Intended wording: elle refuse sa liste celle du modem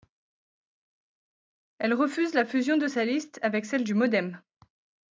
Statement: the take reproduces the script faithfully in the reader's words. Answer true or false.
false